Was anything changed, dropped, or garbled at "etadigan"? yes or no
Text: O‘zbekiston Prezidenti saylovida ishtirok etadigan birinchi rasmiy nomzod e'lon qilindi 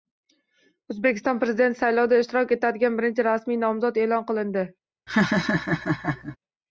no